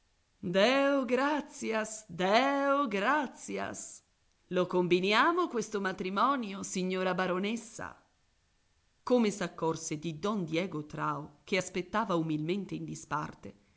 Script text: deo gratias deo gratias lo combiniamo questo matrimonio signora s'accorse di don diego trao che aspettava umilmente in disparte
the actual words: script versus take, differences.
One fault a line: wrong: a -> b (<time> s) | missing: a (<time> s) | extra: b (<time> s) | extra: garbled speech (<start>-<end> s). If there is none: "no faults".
extra: baronessa come (7.1 s)